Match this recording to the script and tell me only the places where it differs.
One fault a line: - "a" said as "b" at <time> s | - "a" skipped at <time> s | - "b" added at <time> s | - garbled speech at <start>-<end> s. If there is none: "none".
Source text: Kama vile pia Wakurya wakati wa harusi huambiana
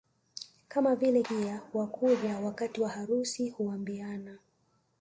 none